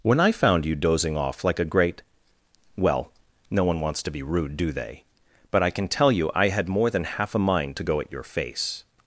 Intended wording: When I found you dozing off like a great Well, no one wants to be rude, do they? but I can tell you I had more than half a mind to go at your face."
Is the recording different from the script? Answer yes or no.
no